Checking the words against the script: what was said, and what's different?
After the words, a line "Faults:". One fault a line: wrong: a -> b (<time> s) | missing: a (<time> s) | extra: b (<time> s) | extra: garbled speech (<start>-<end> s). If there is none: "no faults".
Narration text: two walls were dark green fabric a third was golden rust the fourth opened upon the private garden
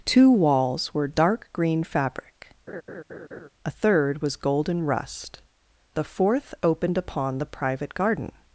two walls were dark green fabric a third was golden rust the fourth opened upon the private garden
Faults:
no faults